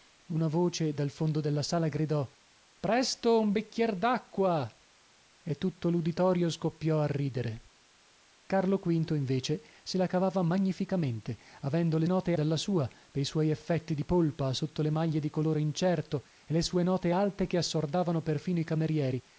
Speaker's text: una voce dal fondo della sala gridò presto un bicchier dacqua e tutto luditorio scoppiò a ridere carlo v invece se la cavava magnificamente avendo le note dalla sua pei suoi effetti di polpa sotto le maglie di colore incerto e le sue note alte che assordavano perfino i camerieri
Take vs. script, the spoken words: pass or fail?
pass